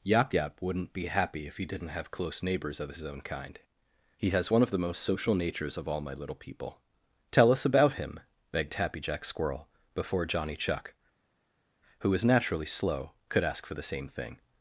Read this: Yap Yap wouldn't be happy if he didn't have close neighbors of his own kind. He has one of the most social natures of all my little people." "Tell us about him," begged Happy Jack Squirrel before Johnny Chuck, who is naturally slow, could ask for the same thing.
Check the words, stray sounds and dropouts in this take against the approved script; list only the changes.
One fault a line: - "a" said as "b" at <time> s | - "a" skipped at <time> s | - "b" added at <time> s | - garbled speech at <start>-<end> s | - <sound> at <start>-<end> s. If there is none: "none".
- "is" said as "was" at 12.1 s